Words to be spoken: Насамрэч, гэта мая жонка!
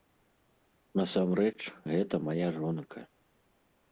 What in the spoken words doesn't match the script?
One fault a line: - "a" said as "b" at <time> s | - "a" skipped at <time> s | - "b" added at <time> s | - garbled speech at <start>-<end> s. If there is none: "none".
none